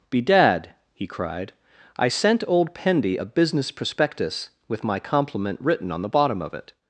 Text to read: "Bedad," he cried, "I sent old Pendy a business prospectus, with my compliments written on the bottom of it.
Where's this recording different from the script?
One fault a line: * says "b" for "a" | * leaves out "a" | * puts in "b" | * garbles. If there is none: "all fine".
* says "compliment" for "compliments"